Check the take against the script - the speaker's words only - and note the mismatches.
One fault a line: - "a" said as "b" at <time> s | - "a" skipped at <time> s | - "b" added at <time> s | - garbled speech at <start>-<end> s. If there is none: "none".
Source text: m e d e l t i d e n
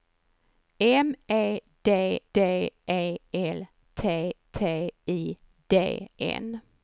- "d" added at 2.3 s
- "t" added at 4.5 s
- "e" skipped at 6.1 s